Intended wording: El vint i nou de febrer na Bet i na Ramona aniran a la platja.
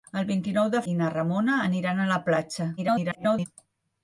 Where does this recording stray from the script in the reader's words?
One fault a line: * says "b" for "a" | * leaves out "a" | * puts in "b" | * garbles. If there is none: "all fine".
* leaves out "febrer na Bet"
* garbles